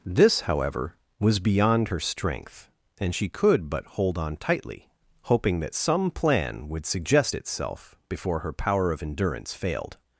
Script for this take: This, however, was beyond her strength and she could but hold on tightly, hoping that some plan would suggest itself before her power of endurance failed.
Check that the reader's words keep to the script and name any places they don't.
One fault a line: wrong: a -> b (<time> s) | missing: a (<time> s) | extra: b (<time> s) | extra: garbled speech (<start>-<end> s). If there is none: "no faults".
no faults